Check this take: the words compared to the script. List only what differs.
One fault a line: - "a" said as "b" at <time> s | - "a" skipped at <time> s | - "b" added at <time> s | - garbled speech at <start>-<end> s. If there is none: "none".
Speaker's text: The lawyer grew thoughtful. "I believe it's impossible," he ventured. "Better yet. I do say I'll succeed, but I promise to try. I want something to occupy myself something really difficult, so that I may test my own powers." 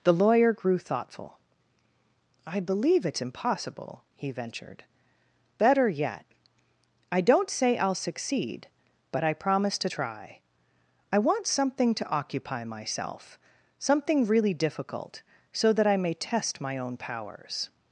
- "do" said as "don't" at 7.2 s